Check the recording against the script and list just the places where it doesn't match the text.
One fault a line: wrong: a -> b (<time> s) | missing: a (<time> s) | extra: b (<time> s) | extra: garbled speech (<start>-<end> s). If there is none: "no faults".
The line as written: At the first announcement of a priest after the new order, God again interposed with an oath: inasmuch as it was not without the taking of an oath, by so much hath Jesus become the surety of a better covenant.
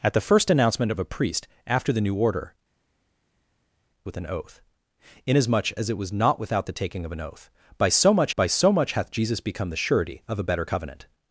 missing: God again interposed (2.5 s)
extra: by so much (8.4 s)